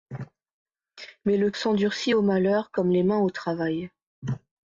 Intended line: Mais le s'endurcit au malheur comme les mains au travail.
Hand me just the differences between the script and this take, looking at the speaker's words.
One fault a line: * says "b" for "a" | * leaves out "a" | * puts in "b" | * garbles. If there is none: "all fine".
all fine